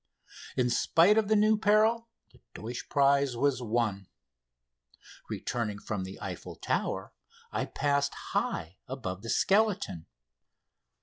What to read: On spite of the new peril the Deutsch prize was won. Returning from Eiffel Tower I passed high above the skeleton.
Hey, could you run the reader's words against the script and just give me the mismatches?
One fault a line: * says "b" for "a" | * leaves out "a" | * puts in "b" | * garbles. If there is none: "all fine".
* says "In" for "On"
* puts in "the"